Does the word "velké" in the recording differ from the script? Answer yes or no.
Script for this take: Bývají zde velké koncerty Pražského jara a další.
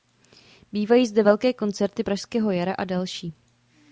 no